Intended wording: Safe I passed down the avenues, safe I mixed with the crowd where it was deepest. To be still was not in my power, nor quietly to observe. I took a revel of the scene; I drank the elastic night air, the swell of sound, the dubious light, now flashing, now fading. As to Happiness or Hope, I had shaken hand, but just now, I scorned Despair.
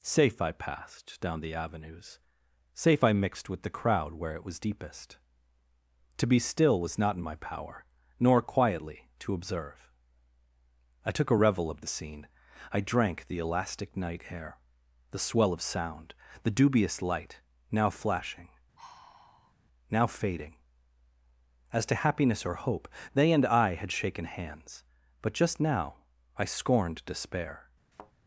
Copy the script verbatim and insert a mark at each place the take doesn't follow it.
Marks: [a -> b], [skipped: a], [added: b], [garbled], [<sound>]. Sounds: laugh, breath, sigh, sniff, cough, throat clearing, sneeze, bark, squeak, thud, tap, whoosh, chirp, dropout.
Safe I passed down the avenues, safe I mixed with the crowd where it was deepest. To be still was not in my power, nor quietly to observe. I took a revel of the scene; I drank the elastic night air, the swell of sound, the dubious light, now flashing, [sigh] now fading. As to Happiness or Hope, [added: they and] I had shaken [hand, -> hands] but just now, I scorned Despair. [thud]